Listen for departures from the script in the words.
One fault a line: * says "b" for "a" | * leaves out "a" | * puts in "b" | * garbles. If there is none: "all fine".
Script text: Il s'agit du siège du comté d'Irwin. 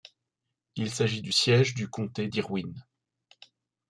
all fine